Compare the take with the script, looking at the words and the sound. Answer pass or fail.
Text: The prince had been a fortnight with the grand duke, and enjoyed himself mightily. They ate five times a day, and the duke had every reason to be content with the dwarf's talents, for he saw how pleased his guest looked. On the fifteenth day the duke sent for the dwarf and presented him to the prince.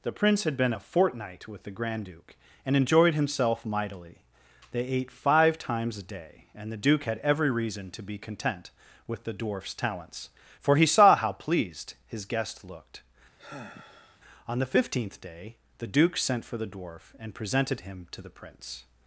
fail